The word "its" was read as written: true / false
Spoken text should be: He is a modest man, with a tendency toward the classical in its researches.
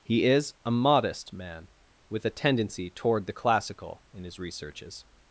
false